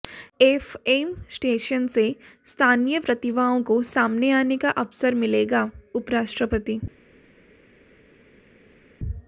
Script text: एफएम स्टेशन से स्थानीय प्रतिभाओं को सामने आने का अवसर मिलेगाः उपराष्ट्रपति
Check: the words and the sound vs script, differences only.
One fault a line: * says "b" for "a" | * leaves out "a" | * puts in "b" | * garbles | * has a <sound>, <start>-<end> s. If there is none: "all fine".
all fine